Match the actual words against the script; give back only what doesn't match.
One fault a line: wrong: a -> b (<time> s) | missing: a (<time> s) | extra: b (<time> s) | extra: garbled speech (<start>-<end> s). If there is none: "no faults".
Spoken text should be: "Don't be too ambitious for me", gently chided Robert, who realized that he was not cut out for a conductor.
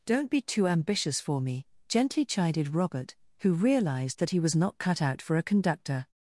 no faults